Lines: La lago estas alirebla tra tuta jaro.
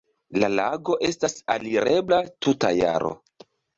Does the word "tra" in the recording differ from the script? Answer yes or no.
yes